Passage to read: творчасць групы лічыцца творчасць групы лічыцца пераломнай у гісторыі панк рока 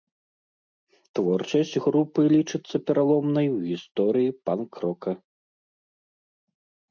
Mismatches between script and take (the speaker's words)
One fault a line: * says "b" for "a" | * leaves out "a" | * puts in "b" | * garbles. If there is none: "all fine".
* leaves out "творчасць групы лічыцца"